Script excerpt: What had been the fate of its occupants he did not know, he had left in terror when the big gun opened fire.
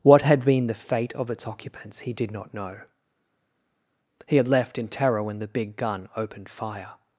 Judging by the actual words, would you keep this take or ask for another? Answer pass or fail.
pass